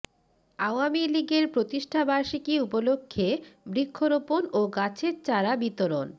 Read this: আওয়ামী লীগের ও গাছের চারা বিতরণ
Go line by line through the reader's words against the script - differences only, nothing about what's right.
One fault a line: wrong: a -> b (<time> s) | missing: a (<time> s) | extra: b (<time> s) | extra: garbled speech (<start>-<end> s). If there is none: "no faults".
extra: প্রতিষ্ঠাবার্ষিকী উপলক্ষে বৃক্ষরোপণ (1.5 s)